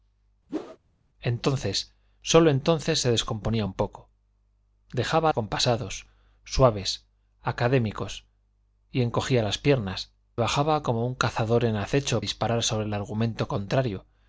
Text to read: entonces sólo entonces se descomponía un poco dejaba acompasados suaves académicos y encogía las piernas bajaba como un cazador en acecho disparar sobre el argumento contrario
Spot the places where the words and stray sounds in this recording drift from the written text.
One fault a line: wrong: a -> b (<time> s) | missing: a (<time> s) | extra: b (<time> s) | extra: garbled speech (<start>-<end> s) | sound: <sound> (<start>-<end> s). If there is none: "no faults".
sound: whoosh (0.5-0.8 s)